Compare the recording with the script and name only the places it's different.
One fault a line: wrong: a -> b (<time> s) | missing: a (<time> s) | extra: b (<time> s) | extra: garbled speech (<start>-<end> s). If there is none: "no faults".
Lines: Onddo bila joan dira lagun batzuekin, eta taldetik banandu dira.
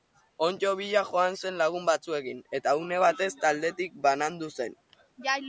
wrong: dira -> zen (1.4 s)
extra: une batez (2.8 s)
wrong: dira -> zen (4.5 s)